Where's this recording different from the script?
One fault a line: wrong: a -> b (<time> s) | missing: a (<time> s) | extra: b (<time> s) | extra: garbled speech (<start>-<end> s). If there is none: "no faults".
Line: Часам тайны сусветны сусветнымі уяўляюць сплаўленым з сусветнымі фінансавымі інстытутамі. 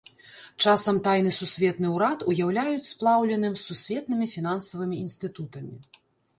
wrong: сусветнымі -> ўрад (2.0 s)